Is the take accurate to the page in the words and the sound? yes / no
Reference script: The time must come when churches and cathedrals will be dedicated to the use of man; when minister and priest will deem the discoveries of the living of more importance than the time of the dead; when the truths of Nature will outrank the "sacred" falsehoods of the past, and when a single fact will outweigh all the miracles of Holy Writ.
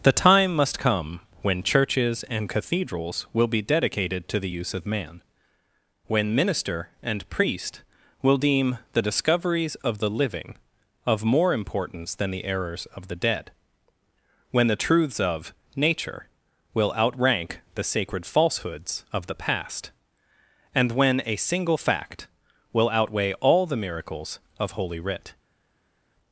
no